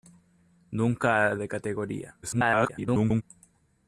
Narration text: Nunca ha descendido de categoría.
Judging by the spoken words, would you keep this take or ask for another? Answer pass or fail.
fail